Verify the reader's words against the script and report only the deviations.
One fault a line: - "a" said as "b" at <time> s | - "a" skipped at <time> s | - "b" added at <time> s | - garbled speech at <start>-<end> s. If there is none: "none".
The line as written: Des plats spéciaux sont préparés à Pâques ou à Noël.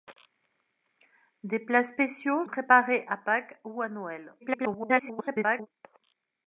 - "sont" skipped at 2.4 s
- garbled speech at 4.4-5.7 s